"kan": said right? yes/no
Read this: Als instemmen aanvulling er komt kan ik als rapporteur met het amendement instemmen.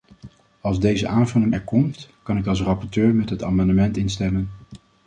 yes